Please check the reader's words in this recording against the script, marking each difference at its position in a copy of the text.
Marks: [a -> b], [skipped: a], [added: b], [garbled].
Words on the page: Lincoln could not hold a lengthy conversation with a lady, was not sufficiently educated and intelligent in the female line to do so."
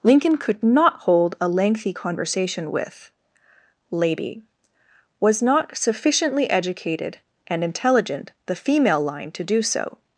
Lincoln could not hold a lengthy conversation with [skipped: a] lady, was not sufficiently educated and intelligent [skipped: in] the female line to do so."